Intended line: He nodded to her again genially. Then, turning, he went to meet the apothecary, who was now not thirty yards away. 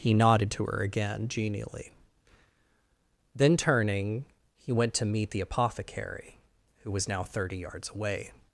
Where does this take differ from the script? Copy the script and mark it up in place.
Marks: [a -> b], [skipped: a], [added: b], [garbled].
He nodded to her again genially. Then, turning, he went to meet the apothecary, who was now [skipped: not] thirty yards away.